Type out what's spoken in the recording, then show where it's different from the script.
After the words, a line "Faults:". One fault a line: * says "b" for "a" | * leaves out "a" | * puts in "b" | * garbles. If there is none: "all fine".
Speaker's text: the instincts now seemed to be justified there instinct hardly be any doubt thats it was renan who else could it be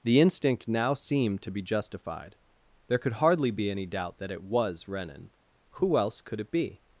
the instinct now seemed to be justified there could hardly be any doubt that it was renan who else could it be
Faults:
* says "instinct" for "instincts"
* says "could" for "instinct"
* says "that" for "thats"